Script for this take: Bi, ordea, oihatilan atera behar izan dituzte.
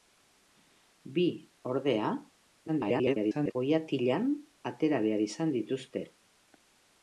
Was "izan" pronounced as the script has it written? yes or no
yes